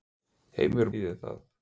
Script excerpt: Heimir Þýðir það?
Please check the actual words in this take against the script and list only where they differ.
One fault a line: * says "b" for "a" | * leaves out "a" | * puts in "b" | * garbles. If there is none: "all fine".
all fine